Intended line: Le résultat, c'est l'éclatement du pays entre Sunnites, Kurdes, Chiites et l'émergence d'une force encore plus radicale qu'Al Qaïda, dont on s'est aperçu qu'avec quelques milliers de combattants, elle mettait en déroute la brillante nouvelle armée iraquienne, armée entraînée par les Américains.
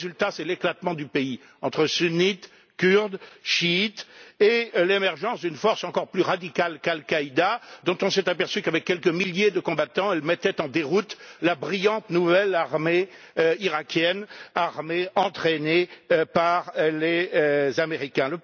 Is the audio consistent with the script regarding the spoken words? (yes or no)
yes